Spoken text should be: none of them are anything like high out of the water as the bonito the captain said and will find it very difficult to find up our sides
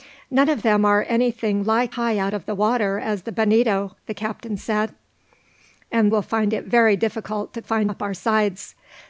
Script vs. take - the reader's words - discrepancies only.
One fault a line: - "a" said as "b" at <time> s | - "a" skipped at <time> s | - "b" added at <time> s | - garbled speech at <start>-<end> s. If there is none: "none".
none